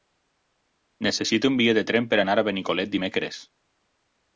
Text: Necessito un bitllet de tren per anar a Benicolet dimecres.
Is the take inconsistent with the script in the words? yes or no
no